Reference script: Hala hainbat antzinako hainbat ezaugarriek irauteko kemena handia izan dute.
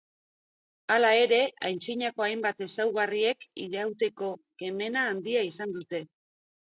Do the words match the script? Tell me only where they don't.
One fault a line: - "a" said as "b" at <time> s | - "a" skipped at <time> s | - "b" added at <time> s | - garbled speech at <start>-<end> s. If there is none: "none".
- "hainbat" said as "ere" at 1.2 s